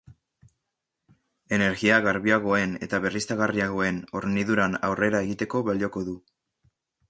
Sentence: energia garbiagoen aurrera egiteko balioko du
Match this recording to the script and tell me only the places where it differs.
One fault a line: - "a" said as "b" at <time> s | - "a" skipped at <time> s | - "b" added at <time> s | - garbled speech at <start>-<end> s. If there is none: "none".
- "eta berriztagarriagoen horniduran" added at 2.9 s